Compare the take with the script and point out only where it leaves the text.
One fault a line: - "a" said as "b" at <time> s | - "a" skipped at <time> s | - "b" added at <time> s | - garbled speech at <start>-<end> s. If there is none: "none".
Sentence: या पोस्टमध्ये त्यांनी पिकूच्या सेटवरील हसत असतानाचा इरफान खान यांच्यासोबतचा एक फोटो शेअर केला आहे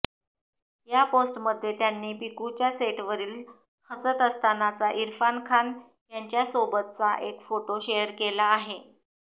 none